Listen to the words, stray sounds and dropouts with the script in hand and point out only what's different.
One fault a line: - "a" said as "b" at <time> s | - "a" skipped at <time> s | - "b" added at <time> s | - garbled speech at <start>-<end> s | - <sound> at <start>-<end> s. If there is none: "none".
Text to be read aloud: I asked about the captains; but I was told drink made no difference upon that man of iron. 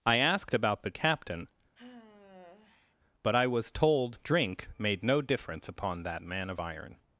- "captains" said as "captain" at 0.9 s
- sigh at 1.8-3.0 s